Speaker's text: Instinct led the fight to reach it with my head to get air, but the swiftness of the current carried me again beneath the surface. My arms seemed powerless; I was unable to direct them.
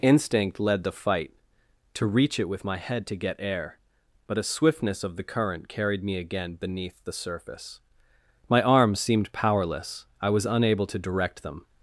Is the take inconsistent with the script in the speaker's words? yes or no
yes